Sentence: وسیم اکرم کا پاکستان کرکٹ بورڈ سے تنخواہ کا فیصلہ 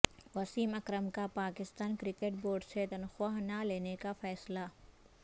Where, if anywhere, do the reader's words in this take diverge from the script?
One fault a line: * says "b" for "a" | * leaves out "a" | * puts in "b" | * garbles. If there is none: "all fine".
* puts in "نہ لینے"